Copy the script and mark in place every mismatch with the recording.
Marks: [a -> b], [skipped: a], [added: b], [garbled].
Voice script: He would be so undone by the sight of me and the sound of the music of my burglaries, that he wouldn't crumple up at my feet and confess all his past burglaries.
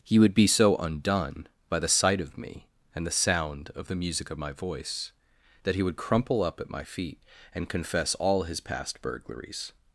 He would be so undone by the sight of me and the sound of the music of my [burglaries, -> voice] that he [wouldn't -> would] crumple up at my feet and confess all his past burglaries.